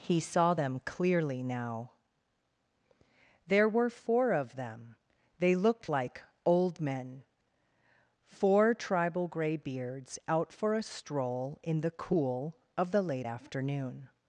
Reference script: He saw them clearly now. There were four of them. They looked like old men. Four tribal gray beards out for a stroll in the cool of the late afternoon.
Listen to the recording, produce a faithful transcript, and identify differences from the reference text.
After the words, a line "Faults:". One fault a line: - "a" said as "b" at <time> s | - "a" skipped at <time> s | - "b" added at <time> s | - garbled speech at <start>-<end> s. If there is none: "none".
He saw them clearly now. There were four of them. They looked like old men. Four tribal gray beards out for a stroll in the cool of the late afternoon.
Faults:
none